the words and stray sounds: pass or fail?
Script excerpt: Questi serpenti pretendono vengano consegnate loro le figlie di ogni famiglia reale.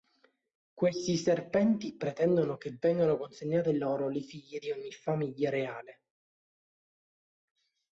fail